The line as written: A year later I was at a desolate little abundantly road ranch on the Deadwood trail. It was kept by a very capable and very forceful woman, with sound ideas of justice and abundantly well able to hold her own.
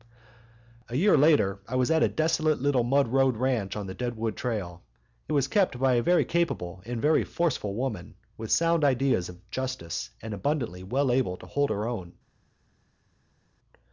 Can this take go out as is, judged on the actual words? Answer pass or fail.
fail